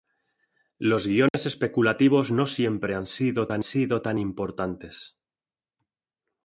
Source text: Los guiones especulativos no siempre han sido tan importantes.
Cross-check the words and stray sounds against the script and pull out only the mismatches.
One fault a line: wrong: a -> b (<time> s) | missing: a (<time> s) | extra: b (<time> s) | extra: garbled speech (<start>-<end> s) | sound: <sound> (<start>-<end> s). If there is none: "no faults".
sound: dropout (1.3-1.3 s)
extra: sido tan (3.6 s)